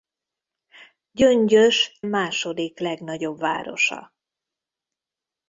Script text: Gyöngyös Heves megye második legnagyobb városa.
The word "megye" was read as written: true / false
false